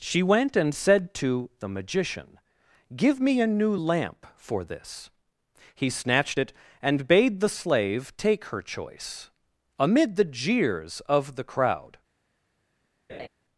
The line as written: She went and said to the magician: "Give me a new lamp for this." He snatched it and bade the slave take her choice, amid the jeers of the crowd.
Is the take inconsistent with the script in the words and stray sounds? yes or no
yes